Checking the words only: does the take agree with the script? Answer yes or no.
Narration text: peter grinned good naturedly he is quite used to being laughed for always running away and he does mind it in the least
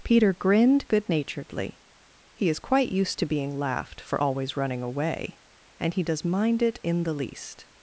yes